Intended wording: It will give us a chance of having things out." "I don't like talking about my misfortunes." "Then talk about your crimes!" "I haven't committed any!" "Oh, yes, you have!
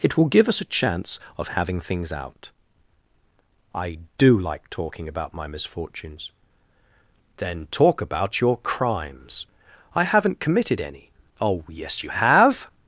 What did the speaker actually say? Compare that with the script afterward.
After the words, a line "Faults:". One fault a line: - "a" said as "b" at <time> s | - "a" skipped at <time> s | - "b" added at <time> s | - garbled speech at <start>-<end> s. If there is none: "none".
It will give us a chance of having things out." "I do like talking about my misfortunes." "Then talk about your crimes!" "I haven't committed any!" "Oh, yes, you have!
Faults:
- "don't" said as "do" at 4.2 s